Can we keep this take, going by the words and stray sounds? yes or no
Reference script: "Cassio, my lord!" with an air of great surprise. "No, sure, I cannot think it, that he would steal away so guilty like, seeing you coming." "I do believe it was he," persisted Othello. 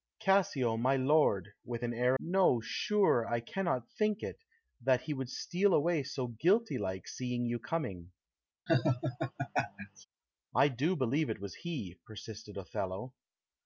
no